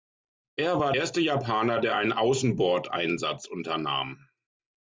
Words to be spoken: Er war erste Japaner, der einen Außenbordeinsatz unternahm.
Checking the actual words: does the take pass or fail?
pass